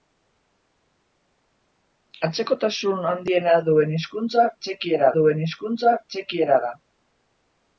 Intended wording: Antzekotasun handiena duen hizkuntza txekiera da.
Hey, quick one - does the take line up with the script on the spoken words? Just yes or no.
no